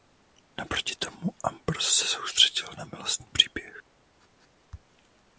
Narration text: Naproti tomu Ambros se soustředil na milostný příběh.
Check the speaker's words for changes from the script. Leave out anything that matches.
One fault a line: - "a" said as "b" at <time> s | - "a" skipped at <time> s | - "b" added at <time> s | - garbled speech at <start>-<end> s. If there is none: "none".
none